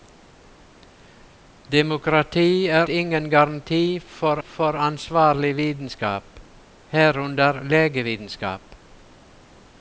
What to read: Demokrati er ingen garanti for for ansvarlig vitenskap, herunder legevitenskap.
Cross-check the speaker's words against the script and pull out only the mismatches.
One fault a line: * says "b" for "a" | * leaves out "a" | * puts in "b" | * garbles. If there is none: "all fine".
all fine